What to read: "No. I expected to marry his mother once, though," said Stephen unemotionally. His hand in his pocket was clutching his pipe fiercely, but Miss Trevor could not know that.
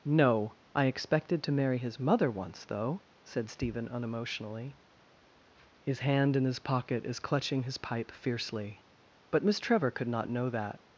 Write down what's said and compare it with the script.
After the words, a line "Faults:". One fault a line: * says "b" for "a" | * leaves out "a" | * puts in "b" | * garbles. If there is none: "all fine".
"No. I expected to marry his mother once, though," said Stephen unemotionally. His hand in his pocket is clutching his pipe fiercely, but Miss Trevor could not know that.
Faults:
* says "is" for "was"